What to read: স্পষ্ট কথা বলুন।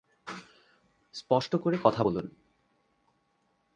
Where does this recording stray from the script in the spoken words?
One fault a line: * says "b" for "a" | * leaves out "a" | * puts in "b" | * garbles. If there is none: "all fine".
* puts in "করে"